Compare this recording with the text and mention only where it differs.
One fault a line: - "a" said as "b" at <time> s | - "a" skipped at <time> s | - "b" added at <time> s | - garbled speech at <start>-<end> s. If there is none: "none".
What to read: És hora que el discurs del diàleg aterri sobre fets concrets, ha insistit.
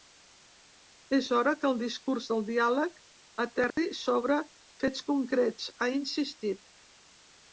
none